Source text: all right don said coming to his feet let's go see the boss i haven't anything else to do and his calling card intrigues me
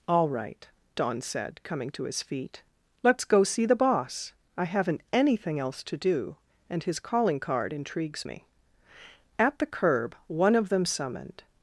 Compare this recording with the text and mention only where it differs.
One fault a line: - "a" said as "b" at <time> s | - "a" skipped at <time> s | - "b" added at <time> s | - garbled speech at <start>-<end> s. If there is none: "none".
- "at the curb one of them summoned" added at 9.4 s